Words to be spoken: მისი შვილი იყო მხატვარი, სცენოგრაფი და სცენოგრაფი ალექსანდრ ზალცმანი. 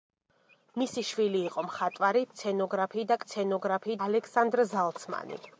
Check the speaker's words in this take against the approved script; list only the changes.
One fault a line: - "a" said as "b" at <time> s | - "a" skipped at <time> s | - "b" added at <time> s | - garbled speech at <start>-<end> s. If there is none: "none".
none